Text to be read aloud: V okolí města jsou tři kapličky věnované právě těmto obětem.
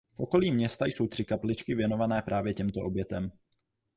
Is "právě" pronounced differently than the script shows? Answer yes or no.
no